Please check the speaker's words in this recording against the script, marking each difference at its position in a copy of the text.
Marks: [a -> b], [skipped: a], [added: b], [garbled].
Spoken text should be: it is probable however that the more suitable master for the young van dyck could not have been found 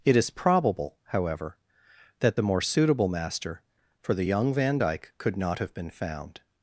it is probable however that the more suitable master for the young van dyck could not have been found